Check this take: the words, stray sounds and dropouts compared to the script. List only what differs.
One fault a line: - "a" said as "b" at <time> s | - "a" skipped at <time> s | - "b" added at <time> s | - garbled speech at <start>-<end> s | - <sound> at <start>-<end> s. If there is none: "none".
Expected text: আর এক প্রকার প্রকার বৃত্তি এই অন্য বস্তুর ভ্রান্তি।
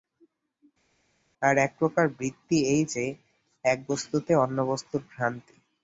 - "প্রকার" skipped at 2.0 s
- "যে এক বস্তুতে" added at 2.8 s